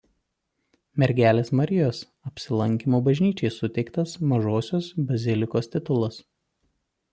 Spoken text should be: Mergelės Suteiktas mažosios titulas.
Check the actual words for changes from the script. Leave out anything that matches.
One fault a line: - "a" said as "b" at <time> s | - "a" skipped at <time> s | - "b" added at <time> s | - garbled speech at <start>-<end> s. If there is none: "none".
- "Marijos Apsilankymo bažnyčiai" added at 1.6 s
- "bazilikos" added at 5.1 s